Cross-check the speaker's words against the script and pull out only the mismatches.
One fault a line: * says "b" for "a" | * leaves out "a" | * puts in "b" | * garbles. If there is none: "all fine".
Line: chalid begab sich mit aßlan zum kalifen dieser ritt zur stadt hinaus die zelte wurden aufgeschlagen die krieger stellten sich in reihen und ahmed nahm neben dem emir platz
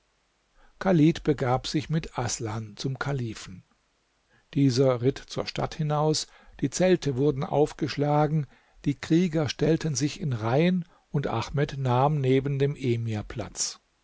all fine